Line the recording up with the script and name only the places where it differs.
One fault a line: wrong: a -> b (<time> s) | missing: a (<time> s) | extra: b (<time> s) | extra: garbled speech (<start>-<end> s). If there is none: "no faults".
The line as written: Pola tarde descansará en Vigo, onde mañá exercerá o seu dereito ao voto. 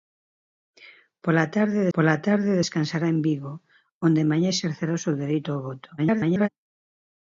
extra: pola tarde (1.9 s)
extra: garbled speech (6.0-6.5 s)